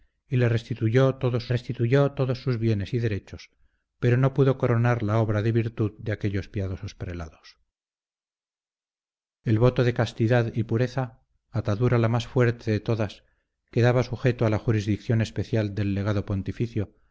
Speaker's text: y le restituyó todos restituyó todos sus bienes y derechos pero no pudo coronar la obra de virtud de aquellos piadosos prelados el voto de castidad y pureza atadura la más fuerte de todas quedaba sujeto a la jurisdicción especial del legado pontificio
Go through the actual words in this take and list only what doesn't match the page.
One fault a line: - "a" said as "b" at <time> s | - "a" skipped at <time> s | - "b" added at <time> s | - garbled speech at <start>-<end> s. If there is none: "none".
none